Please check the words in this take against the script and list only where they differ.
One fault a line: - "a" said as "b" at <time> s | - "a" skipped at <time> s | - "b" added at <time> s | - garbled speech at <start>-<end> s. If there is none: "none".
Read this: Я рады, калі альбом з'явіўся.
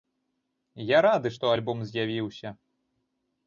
- "калі" said as "што" at 1.4 s